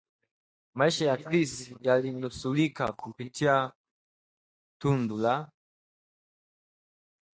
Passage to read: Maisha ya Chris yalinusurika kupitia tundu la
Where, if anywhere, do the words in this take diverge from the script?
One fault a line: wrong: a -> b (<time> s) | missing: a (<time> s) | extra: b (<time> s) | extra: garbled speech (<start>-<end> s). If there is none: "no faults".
no faults